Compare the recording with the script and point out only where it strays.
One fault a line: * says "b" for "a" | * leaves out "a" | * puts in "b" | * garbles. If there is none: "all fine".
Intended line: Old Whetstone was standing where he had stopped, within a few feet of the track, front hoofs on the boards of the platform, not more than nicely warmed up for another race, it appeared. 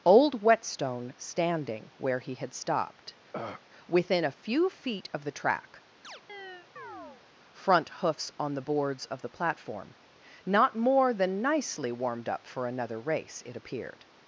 * leaves out "was"